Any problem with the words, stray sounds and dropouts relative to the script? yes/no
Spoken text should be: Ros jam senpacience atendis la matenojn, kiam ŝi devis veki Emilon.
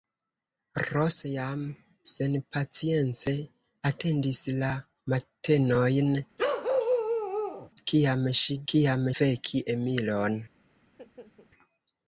yes